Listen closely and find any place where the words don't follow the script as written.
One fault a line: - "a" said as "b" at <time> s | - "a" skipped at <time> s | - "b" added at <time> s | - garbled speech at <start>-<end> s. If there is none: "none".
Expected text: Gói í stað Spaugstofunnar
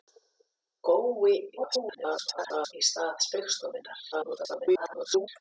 - garbled speech at 1.6-2.7 s
- garbled speech at 4.1-5.3 s